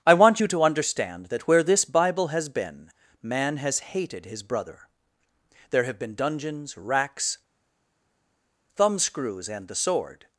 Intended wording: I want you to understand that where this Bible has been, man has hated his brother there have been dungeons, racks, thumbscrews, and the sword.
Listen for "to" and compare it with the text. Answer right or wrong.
right